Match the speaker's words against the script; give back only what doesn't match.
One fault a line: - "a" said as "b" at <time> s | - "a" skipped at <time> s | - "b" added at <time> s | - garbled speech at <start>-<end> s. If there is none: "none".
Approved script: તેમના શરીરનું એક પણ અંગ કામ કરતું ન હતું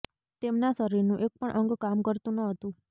none